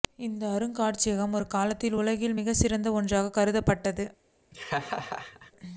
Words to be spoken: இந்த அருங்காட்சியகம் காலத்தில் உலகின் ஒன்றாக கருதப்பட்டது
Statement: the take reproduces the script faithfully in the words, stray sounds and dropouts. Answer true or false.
false